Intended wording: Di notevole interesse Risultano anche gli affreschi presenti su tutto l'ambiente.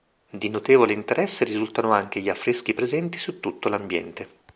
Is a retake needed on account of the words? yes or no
no